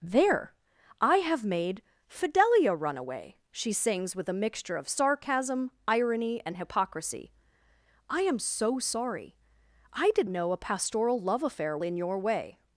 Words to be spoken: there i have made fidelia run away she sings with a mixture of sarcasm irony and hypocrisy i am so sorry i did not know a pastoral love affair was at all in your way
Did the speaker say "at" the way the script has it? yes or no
no